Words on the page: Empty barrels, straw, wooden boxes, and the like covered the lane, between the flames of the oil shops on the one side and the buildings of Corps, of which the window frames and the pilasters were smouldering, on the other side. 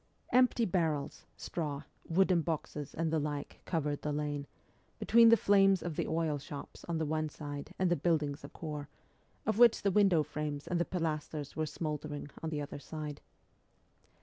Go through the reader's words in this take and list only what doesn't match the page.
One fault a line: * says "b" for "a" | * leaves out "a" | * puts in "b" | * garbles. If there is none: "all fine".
all fine